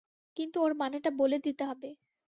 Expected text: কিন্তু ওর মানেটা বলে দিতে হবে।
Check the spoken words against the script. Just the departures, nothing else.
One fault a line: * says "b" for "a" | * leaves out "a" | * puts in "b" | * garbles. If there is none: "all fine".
all fine